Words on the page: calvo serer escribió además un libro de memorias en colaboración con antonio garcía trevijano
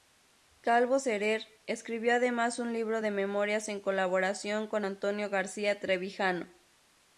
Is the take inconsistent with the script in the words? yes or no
no